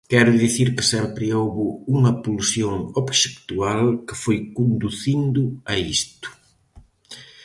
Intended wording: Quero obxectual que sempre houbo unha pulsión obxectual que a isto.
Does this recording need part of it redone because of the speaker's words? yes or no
yes